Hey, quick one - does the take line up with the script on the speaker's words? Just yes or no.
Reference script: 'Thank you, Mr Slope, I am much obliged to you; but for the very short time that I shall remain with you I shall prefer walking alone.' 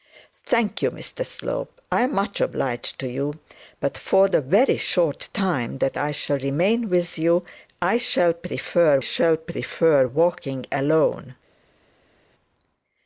no